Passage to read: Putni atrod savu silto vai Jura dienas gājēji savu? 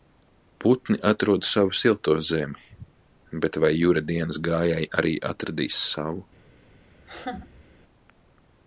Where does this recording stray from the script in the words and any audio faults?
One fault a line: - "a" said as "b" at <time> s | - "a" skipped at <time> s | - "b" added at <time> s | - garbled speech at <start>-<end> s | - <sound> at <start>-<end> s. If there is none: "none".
- "zemi bet" added at 2.3 s
- "arī atradīs" added at 5.0 s
- laugh at 7.0-7.6 s